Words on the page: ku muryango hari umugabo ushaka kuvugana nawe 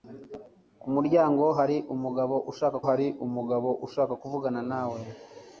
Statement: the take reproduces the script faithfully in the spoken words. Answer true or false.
false